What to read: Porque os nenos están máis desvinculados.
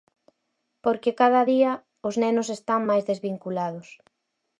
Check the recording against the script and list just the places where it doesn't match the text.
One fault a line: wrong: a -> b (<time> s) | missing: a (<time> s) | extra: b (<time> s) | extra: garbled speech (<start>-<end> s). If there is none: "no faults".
extra: cada día (1.2 s)